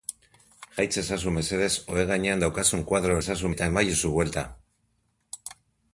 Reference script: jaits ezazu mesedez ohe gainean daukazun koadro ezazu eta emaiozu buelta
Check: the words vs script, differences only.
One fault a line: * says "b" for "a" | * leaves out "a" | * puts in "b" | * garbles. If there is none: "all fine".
all fine